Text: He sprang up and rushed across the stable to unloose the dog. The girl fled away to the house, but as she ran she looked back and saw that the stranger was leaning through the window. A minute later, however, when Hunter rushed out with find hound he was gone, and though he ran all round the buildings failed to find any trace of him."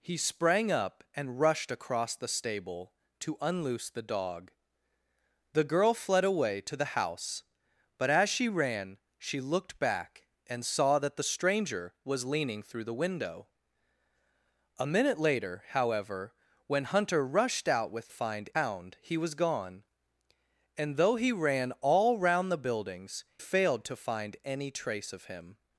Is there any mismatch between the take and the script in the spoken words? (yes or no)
no